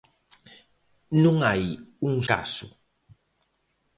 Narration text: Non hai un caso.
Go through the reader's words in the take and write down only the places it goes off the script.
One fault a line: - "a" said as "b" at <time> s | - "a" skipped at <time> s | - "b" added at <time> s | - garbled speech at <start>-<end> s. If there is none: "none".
none